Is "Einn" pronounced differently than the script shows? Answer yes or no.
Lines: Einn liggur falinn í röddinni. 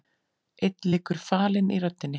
no